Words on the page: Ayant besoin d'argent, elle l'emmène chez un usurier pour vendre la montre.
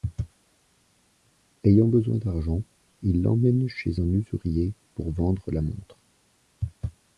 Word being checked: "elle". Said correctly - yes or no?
no